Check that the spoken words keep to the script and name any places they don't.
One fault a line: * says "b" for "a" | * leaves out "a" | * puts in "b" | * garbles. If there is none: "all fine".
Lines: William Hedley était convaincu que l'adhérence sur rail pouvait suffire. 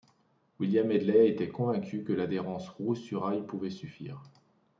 * puts in "roue"